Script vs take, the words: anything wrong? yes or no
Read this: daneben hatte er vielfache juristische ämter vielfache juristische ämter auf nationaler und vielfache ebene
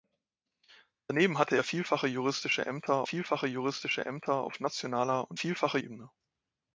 no